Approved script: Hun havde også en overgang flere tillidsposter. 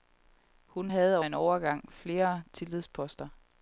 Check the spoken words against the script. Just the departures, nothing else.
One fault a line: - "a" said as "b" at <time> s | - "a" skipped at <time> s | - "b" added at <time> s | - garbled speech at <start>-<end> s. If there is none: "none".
- "også" skipped at 1.2 s